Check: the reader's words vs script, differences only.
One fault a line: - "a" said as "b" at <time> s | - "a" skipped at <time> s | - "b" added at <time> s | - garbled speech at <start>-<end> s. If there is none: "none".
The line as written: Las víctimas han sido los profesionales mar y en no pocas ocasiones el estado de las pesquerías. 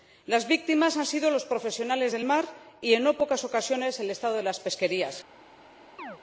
- "del" added at 2.1 s